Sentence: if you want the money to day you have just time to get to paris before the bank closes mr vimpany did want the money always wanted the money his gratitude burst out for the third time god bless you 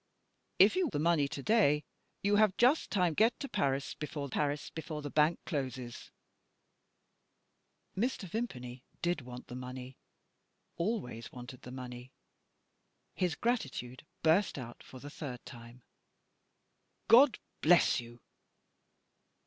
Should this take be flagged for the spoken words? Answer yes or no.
yes